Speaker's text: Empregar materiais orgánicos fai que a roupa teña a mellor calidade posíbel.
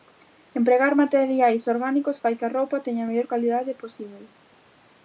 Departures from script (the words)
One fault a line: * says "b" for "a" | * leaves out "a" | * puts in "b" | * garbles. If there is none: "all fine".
all fine